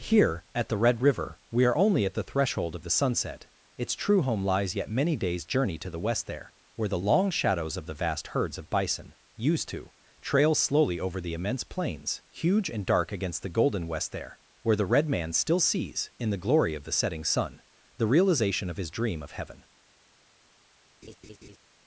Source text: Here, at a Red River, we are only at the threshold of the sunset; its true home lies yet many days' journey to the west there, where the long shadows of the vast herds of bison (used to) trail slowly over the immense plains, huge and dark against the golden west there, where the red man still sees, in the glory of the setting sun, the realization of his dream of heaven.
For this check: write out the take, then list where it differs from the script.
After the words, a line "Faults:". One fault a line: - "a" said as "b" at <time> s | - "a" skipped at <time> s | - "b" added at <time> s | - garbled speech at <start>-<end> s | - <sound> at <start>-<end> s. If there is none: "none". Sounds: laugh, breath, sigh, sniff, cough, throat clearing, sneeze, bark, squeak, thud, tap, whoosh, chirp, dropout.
Here, at the Red River, we are only at the threshold of the sunset; its true home lies yet many days' journey to the west there, where the long shadows of the vast herds of bison (used to) trail slowly over the immense plains, huge and dark against the golden west there, where the red man still sees, in the glory of the setting sun, the realization of his dream of heaven.
Faults:
- "a" said as "the" at 0.7 s
- laugh at 21.0-21.6 s